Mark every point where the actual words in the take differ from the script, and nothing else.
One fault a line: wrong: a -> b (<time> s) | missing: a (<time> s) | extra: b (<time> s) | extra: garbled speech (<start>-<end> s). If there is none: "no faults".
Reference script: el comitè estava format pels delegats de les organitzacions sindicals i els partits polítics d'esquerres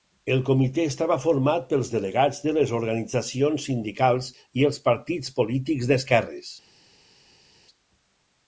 no faults